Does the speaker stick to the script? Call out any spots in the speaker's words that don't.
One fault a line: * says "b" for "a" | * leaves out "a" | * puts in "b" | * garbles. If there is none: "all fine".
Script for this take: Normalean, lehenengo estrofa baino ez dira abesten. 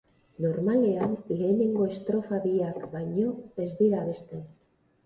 * puts in "biak"